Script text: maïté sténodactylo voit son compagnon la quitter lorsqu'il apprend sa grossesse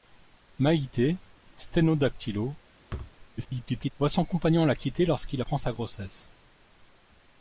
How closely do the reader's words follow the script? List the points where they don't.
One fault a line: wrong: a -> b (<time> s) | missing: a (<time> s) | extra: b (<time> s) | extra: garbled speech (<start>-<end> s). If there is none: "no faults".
extra: garbled speech (3.4-3.9 s)